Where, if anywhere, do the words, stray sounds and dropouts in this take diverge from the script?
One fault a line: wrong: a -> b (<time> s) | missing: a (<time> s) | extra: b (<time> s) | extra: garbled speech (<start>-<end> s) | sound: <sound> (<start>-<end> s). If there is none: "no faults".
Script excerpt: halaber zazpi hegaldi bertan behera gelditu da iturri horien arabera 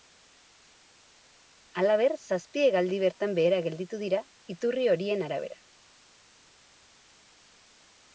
wrong: da -> dira (4.1 s)